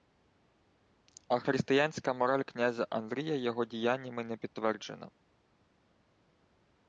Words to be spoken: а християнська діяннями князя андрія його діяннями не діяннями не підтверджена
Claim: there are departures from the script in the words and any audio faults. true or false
true